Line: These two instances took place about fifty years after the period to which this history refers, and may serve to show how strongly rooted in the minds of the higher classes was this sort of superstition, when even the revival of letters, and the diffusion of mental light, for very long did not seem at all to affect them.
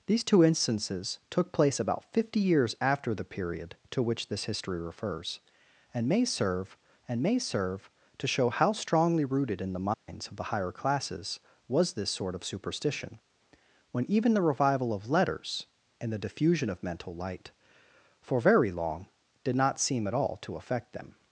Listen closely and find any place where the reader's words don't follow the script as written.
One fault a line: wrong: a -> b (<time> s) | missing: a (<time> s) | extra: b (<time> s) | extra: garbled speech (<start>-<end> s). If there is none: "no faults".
extra: and may serve (7.1 s)